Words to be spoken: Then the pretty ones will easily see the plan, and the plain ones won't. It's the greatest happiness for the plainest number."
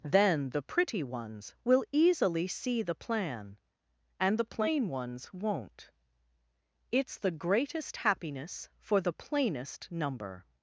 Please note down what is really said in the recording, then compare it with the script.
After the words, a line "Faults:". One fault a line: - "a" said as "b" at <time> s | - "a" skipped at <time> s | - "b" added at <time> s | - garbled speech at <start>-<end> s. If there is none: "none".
Then the pretty ones will easily see the plan, and the plain ones won't. It's the greatest happiness for the plainest number."
Faults:
none